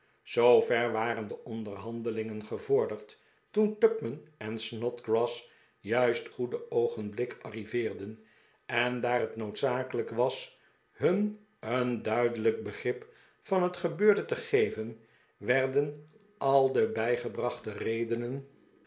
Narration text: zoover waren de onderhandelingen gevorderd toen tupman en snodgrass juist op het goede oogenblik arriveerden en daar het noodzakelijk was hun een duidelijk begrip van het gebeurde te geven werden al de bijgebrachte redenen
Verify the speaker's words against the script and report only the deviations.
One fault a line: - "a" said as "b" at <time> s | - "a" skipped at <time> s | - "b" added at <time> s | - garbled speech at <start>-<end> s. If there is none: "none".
- "op het" skipped at 6.3 s